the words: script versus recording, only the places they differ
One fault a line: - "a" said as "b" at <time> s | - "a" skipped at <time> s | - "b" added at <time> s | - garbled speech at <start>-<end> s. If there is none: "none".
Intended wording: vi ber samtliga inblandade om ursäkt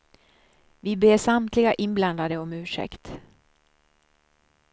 none